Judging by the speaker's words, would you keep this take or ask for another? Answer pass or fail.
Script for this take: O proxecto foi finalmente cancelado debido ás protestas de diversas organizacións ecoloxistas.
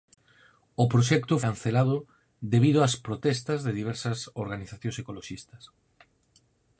fail